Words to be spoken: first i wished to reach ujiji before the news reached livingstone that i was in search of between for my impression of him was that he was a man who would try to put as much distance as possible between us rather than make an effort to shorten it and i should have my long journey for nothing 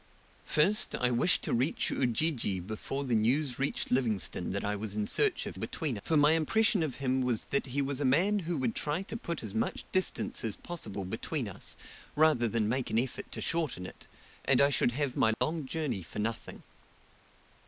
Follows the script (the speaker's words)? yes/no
yes